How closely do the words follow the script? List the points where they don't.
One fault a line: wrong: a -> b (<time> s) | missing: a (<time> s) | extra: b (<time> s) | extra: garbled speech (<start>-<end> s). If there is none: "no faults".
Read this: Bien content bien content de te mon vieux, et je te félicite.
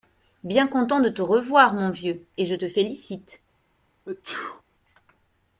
missing: bien content (1.0 s)
extra: revoir (1.2 s)